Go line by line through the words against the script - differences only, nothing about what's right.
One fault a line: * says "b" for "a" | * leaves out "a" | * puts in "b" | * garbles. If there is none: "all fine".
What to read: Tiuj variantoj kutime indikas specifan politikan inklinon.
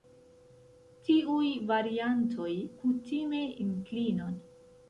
* leaves out "indikas specifan politikan"